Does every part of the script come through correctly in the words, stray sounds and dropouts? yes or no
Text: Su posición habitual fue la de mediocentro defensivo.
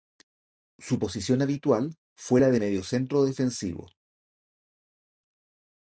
yes